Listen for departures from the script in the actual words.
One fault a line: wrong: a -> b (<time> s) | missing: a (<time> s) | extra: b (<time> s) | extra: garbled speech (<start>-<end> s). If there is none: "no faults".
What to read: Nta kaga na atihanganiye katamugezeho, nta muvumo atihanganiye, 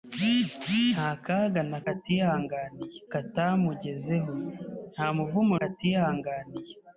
no faults